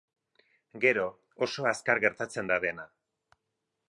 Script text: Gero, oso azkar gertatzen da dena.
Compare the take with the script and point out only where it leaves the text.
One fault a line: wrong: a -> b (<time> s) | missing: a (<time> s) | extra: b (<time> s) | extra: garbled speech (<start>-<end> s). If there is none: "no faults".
no faults